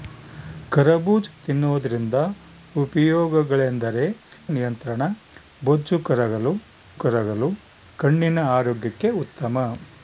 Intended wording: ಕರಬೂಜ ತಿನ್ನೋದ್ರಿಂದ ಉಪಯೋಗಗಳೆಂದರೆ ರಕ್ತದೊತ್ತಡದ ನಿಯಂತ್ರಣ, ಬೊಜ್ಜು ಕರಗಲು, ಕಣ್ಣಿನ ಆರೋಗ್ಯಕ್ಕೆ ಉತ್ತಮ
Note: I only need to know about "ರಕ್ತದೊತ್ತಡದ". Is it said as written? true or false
false